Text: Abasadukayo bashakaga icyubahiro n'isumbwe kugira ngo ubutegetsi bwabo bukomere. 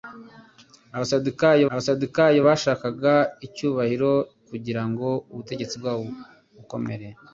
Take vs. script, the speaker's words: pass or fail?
fail